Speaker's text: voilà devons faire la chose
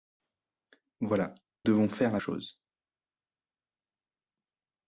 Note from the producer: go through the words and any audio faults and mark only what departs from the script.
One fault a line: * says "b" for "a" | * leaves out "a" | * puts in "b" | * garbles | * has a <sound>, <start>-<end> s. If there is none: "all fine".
all fine